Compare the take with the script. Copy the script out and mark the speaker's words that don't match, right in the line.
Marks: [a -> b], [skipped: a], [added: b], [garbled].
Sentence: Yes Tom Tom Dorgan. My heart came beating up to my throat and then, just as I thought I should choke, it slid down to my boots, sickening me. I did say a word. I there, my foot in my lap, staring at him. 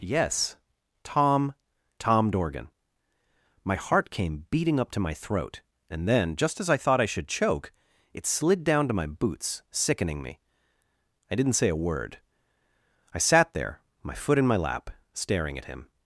Yes Tom Tom Dorgan. My heart came beating up to my throat and then, just as I thought I should choke, it slid down to my boots, sickening me. I [did -> didn't] say a word. I [added: sat] there, my foot in my lap, staring at him.